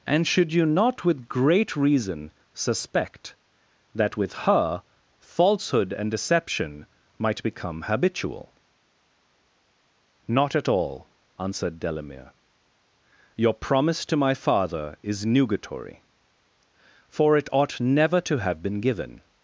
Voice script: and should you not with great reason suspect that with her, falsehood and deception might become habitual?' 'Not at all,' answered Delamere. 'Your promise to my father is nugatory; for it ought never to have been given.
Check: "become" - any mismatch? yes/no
no